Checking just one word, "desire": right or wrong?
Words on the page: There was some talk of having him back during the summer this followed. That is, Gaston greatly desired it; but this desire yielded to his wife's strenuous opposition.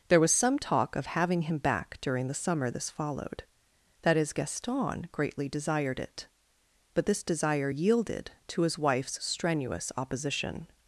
right